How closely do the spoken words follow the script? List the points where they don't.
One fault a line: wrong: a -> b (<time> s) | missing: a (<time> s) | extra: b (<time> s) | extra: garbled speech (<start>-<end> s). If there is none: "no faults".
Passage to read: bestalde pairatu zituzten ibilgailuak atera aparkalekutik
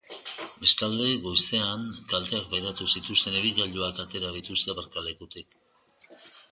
extra: goizean kalteak (1.2 s)
extra: dituzte (4.4 s)